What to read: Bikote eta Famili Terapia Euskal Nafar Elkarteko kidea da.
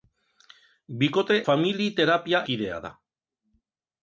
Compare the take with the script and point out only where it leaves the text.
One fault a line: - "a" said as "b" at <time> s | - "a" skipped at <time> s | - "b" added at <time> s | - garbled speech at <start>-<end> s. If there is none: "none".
- "eta" skipped at 1.4 s
- "Euskal Nafar Elkarteko" skipped at 2.4 s